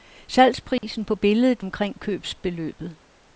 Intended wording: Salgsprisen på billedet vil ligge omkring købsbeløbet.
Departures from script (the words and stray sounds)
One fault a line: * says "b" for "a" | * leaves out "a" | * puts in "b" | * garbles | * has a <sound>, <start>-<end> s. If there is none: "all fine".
* has a dropout, 0.8-0.8 s
* leaves out "vil ligge"